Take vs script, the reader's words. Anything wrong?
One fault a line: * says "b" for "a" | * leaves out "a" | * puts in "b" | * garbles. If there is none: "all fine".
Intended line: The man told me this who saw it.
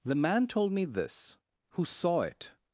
all fine